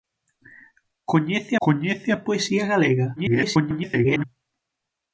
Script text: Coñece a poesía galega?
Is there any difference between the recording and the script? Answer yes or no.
yes